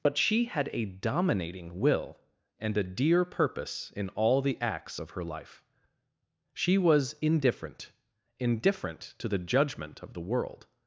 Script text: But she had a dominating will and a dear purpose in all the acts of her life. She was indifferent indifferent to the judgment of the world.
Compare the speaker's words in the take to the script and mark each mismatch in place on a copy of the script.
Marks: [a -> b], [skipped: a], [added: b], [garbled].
But she had a dominating will and a dear purpose in all the acts of her life. She was indifferent indifferent to the judgment of the world.